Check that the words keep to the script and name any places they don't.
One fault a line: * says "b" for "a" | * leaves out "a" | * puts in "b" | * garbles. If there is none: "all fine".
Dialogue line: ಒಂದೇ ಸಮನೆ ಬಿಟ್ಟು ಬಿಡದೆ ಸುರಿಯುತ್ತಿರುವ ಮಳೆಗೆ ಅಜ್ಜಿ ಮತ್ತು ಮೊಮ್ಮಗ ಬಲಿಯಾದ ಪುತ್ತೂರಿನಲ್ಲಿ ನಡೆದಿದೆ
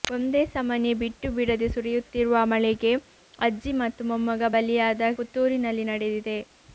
all fine